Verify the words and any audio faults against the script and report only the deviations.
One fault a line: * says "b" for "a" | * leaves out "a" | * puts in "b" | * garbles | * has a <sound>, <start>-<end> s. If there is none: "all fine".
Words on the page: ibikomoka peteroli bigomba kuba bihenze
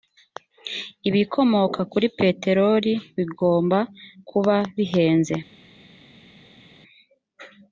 * puts in "kuri"